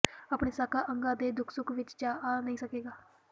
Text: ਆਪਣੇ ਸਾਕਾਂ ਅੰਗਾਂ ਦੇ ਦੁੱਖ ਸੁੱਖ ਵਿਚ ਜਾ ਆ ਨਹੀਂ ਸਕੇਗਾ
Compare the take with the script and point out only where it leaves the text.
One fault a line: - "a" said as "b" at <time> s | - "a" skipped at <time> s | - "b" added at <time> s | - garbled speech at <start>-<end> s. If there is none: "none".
none